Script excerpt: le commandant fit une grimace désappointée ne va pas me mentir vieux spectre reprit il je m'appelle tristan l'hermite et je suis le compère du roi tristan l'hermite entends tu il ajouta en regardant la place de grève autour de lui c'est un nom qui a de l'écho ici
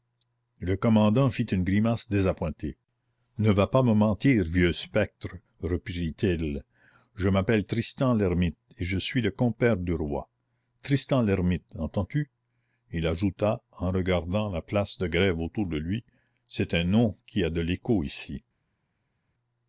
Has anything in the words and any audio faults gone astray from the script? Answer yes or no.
no